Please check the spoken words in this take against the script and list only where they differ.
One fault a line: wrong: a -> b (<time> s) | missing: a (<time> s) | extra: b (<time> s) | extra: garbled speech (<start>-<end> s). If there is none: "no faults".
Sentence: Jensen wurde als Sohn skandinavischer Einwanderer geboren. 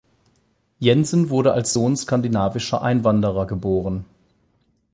no faults